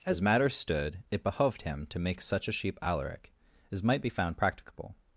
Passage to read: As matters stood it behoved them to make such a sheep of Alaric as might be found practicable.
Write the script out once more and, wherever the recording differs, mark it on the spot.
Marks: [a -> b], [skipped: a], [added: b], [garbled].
As matters stood it behoved [them -> him] to make such a sheep [skipped: of] Alaric as might be found practicable.